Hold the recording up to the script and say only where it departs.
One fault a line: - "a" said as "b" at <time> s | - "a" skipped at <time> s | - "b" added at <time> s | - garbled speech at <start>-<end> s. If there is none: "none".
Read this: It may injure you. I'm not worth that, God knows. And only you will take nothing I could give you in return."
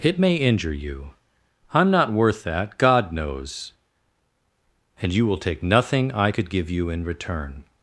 - "only" skipped at 5.1 s